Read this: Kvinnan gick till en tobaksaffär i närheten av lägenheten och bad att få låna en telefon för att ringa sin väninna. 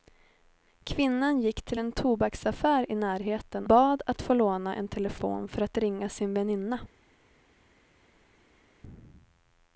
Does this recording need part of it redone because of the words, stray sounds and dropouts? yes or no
yes